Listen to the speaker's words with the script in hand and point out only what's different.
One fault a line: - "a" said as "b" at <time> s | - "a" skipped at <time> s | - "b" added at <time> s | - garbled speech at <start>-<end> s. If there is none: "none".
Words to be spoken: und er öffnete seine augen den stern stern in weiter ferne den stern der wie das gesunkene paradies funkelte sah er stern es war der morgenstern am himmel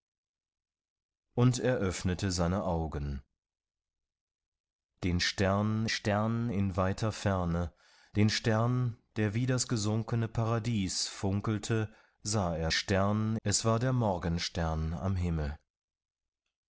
none